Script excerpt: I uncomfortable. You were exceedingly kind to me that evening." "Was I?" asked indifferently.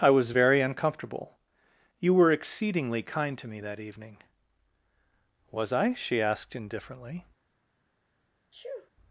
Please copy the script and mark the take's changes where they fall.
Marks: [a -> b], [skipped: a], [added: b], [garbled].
I [added: was very] uncomfortable. You were exceedingly kind to me that evening." "Was I?" [added: she] asked indifferently.